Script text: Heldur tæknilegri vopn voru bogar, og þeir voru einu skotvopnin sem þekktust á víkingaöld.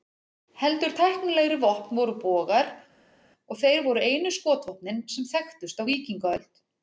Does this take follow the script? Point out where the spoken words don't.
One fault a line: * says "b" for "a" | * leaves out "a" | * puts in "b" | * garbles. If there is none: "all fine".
all fine